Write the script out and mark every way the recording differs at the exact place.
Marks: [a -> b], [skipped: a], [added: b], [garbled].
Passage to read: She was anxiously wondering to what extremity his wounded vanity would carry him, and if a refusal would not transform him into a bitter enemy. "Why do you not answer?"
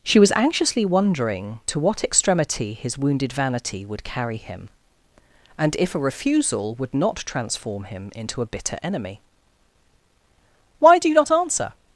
She was anxiously wondering to what extremity his wounded vanity would carry him, and if a refusal would not transform him into a bitter enemy. "Why do you not answer?"